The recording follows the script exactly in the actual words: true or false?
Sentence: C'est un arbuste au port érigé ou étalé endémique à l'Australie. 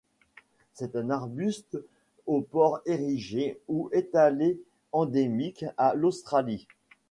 true